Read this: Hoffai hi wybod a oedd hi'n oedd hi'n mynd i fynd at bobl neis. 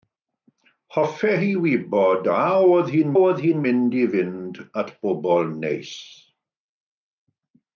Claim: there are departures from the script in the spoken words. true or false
false